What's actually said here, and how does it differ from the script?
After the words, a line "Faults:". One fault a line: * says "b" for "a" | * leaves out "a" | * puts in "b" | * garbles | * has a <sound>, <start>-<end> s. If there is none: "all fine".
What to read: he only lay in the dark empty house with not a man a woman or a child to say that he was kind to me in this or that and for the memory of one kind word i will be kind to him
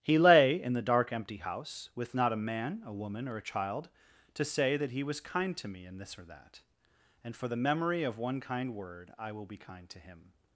he lay in the dark empty house with not a man a woman or a child to say that he was kind to me in this or that and for the memory of one kind word i will be kind to him
Faults:
* leaves out "only"